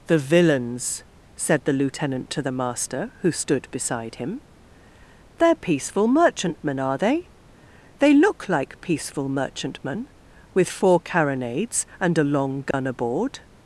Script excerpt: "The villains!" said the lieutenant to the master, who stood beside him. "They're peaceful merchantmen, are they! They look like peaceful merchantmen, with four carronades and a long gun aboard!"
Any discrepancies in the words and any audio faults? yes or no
yes